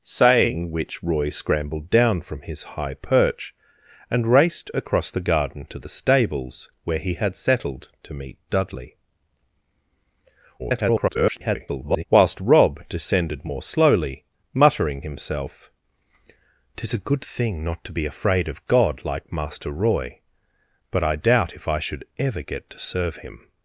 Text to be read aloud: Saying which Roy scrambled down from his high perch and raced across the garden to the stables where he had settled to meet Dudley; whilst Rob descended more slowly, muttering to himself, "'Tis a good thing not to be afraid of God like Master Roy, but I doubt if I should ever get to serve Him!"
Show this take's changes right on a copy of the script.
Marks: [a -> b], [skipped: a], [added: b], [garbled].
Saying which Roy scrambled down from his high perch and raced across the garden to the stables where he had settled to meet Dudley; [garbled] whilst Rob descended more slowly, muttering [skipped: to] himself, "'Tis a good thing not to be afraid of God like Master Roy, but I doubt if I should ever get to serve Him!"